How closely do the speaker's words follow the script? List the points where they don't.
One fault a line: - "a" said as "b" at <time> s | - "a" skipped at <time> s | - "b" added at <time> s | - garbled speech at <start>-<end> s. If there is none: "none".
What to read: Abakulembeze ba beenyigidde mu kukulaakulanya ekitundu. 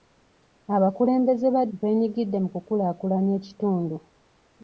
none